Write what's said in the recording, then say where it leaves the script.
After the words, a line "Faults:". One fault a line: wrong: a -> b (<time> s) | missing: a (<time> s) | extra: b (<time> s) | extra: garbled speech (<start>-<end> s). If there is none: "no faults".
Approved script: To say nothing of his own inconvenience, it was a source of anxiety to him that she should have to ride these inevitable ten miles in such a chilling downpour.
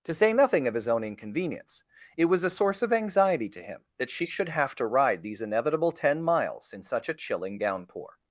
To say nothing of his own inconvenience, it was a source of anxiety to him that she should have to ride these inevitable ten miles in such a chilling downpour.
Faults:
no faults